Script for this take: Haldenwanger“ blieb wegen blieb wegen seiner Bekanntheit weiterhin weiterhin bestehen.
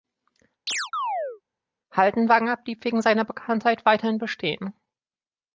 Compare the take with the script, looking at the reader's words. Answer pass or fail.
fail